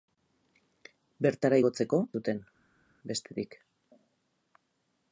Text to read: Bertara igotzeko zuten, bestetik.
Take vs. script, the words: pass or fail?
pass